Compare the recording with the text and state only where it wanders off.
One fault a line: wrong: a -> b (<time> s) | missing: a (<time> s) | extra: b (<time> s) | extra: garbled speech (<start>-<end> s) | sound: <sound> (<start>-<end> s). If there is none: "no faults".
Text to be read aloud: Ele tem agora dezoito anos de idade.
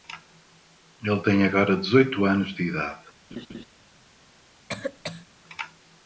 sound: laugh (3.3-3.7 s)
sound: cough (4.7-5.3 s)